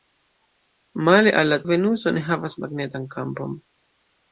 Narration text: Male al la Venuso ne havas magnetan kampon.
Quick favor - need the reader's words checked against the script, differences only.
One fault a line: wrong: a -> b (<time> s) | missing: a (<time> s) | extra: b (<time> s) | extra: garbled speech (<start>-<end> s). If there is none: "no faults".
no faults